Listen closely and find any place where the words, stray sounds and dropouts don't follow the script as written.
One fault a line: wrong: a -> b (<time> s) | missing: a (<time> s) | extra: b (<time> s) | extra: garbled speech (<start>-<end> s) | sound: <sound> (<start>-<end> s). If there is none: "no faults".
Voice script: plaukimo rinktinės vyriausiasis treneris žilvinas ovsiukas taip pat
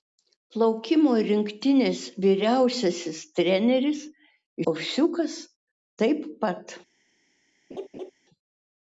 missing: žilvinas (4.1 s)
sound: laugh (7.7-8.1 s)